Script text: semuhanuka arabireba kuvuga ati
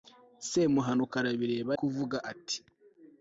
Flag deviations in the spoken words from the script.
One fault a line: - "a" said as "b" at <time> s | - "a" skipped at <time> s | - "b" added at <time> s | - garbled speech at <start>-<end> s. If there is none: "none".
none